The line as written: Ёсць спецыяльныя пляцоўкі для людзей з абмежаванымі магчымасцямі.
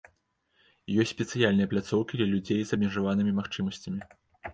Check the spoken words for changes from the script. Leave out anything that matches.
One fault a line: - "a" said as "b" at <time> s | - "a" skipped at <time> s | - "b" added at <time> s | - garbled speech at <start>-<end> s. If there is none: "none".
none